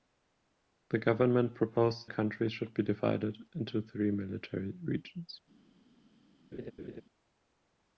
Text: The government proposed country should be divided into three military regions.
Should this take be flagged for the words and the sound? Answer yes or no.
yes